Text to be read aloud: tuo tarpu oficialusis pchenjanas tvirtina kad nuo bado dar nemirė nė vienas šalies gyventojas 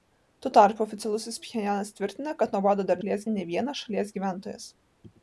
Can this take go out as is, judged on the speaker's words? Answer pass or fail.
fail